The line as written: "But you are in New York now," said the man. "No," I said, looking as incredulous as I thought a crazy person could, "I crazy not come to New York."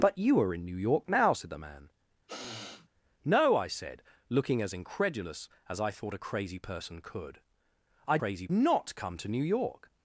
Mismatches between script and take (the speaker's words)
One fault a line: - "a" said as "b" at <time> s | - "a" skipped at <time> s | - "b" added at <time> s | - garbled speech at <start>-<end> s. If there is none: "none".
none